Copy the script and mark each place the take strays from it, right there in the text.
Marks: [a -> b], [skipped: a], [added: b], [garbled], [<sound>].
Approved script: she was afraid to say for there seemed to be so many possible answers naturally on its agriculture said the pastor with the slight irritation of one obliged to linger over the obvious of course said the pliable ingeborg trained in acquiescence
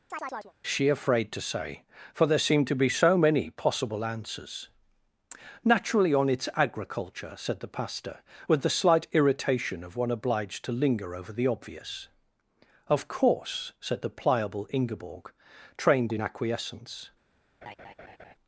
[chirp] she [skipped: was] afraid to say for there seemed to be so many possible answers naturally on its agriculture said the pastor with the slight irritation of one obliged to linger over the obvious of course said the pliable ingeborg trained in acquiescence [laugh]